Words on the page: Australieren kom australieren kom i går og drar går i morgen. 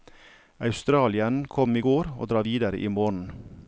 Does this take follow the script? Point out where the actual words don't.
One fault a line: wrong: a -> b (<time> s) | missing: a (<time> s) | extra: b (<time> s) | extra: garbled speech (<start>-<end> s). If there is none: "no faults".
missing: australieren kom (1.8 s)
wrong: går -> videre (2.4 s)